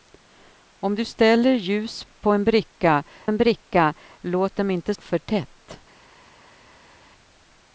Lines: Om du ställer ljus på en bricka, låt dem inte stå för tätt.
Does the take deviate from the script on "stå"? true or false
true